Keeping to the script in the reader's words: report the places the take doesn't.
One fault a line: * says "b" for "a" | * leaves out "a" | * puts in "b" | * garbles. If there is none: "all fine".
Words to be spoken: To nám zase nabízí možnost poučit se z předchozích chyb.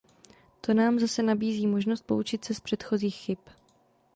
all fine